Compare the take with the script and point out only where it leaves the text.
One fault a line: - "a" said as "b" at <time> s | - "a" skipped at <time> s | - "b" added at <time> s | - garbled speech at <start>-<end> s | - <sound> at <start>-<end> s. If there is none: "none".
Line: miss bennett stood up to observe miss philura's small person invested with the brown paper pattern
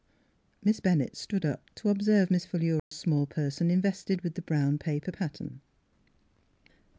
- dropout at 2.8-2.9 s